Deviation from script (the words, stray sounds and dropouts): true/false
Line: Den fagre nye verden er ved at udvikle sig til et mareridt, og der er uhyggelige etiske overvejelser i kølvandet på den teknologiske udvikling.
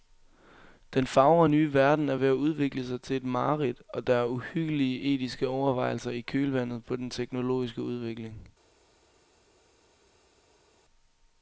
false